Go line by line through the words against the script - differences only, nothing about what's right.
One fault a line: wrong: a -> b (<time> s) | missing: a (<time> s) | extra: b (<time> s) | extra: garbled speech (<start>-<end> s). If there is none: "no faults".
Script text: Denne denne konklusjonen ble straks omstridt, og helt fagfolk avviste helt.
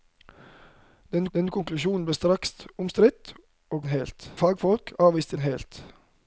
no faults